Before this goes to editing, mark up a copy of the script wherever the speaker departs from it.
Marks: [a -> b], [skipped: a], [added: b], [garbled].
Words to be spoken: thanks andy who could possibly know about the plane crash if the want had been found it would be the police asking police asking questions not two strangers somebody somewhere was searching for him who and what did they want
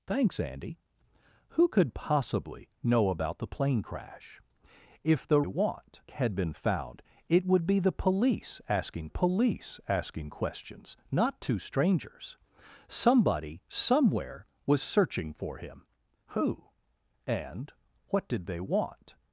thanks andy who could possibly know about the plane crash if the want had been found it would be the police asking police asking questions not two strangers somebody somewhere was searching for him who and what did they want